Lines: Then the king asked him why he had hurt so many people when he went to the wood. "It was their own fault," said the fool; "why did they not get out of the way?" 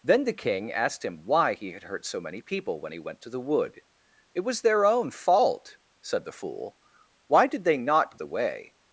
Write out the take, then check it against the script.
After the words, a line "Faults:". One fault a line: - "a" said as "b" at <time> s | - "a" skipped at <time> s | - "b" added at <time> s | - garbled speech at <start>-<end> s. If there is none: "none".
Then the king asked him why he had hurt so many people when he went to the wood. "It was their own fault," said the fool; "why did they not the way?"
Faults:
- "get out of" skipped at 8.2 s